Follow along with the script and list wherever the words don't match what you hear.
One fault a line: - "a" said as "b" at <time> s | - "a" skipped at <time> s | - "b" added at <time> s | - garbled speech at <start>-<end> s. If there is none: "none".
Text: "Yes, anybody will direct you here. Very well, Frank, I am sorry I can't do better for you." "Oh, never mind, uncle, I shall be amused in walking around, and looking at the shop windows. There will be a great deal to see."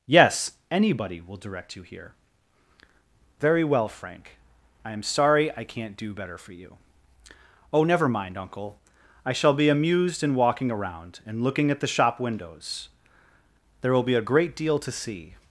none